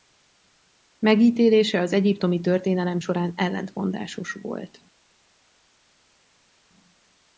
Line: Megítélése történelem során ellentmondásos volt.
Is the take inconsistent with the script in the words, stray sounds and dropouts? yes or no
yes